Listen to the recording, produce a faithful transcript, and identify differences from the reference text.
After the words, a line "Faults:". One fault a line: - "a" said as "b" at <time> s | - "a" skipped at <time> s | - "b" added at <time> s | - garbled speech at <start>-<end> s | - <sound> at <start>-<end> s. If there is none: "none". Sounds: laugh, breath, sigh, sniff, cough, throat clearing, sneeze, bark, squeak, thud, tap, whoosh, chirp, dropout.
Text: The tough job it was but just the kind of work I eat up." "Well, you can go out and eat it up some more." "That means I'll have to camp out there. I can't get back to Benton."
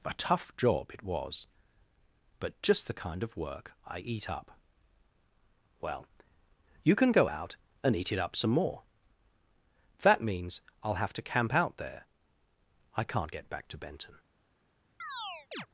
A tough job it was but just the kind of work I eat up." "Well, you can go out and eat it up some more." "That means I'll have to camp out there. I can't get back to Benton."
Faults:
- "The" said as "A" at 0.0 s
- chirp at 15.0-15.7 s